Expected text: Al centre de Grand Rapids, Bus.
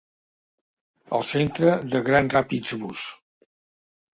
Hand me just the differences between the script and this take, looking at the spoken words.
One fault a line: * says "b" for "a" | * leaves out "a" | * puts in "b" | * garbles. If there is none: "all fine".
all fine